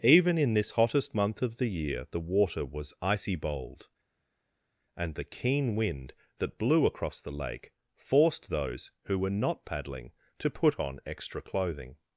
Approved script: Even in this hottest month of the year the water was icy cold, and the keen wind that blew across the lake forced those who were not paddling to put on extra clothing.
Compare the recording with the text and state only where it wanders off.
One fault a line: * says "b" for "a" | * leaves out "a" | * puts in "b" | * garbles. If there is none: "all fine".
* says "bold" for "cold"